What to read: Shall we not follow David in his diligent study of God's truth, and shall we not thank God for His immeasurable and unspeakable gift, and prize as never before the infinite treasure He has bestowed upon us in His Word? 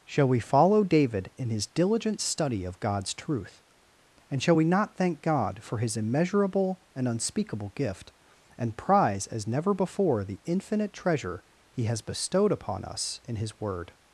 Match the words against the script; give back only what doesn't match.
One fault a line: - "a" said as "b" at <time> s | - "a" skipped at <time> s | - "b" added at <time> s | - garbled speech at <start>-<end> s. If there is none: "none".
- "not" skipped at 0.4 s